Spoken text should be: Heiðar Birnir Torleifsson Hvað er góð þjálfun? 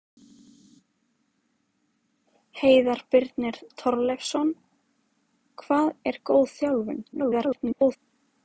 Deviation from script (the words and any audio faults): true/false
true